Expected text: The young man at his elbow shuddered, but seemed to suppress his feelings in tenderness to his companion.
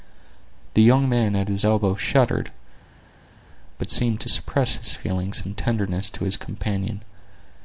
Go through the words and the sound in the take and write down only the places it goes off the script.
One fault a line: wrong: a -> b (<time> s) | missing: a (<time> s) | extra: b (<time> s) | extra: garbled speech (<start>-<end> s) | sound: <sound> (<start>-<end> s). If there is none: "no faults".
no faults